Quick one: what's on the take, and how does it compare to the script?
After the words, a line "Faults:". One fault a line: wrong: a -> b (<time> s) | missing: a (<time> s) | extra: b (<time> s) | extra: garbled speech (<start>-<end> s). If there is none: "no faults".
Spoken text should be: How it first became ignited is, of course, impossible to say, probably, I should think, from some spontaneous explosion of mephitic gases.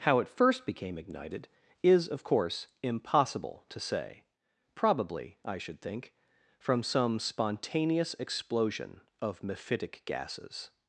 How it first became ignited is, of course, impossible to say, probably, I should think, from some spontaneous explosion of mephitic gases.
Faults:
no faults